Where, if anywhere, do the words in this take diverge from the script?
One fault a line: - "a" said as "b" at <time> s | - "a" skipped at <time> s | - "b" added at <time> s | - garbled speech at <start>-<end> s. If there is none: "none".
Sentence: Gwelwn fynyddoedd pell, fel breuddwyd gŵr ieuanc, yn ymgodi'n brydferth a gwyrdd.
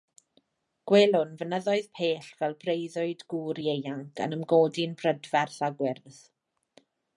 none